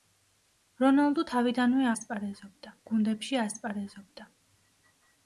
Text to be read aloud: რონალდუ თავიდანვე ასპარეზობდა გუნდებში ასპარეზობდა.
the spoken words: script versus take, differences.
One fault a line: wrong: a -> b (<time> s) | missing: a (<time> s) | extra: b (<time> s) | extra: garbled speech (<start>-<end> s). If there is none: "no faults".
no faults